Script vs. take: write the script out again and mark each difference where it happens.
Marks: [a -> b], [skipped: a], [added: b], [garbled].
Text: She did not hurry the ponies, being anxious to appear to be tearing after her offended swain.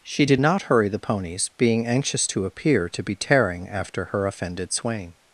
She did not hurry the ponies, being anxious to appear to be tearing after her offended swain.